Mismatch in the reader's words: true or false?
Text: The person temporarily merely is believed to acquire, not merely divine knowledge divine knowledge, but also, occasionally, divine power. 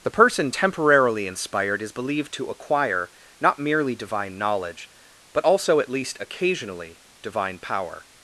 true